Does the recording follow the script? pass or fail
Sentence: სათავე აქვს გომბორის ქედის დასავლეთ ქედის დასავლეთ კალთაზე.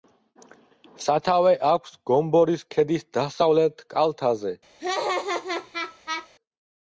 fail